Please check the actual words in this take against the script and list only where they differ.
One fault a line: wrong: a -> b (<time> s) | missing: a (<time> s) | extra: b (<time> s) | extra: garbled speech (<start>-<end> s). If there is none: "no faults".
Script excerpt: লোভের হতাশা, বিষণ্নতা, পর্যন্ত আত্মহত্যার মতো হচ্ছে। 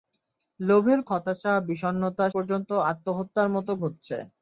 no faults